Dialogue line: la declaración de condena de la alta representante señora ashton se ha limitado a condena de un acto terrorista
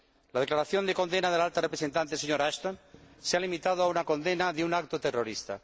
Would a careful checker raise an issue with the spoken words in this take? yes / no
yes